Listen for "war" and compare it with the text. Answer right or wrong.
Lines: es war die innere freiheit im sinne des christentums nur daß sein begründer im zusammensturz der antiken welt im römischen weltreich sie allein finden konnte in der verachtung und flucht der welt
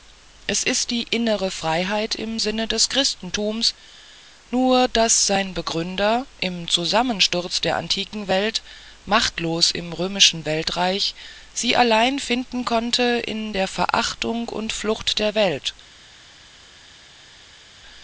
wrong